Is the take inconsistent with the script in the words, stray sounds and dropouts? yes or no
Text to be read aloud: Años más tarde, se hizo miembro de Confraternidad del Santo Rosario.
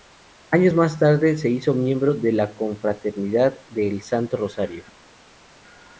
yes